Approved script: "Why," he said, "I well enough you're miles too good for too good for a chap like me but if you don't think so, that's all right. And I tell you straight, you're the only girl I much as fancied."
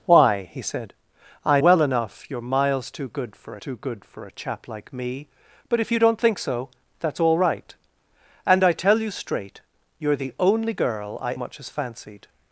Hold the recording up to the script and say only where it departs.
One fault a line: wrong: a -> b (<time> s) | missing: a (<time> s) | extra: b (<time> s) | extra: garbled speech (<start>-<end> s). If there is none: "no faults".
no faults